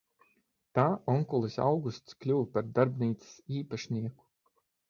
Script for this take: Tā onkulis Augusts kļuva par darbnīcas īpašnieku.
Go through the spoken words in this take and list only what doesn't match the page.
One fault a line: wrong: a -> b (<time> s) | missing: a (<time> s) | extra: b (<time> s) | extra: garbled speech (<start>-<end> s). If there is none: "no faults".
no faults